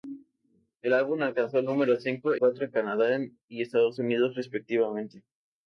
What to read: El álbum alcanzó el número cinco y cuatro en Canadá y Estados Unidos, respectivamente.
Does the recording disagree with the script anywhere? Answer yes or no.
yes